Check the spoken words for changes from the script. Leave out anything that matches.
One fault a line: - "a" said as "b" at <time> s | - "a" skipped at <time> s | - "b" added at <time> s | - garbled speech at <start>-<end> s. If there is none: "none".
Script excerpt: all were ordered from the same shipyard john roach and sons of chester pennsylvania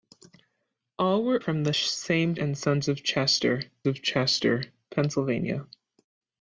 - "ordered" skipped at 1.4 s
- "shipyard john roach and sons" said as "and sons of chester" at 2.3 s